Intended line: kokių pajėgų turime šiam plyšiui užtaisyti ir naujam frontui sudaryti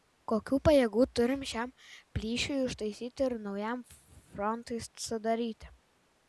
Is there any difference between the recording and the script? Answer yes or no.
no